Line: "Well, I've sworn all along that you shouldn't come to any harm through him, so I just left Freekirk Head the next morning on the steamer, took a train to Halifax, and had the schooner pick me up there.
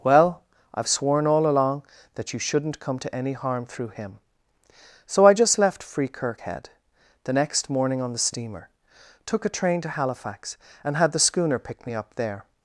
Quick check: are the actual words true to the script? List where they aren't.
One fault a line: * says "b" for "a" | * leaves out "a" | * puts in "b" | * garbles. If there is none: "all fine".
all fine